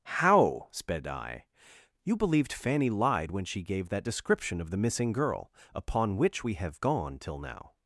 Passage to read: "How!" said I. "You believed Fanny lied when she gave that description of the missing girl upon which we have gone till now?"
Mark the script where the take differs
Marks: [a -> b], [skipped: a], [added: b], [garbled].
"How!" [said -> sped] I. "You believed Fanny lied when she gave that description of the missing girl upon which we have gone till now?"